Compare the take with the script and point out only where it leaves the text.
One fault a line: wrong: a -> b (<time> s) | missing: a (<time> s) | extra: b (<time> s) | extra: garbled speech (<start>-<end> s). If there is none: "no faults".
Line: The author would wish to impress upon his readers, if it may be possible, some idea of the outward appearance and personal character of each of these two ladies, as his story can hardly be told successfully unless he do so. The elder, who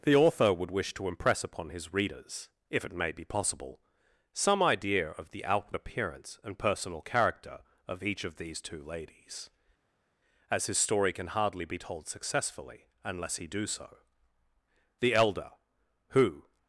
no faults